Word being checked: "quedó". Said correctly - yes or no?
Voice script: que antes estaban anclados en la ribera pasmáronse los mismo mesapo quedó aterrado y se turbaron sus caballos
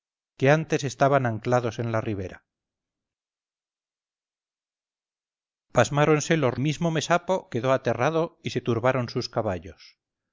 yes